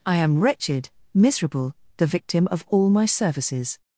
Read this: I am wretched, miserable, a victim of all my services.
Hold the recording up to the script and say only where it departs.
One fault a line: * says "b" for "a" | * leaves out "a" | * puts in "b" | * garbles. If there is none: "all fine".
* says "the" for "a"